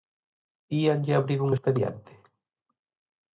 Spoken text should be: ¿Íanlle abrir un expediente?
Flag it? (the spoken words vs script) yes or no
no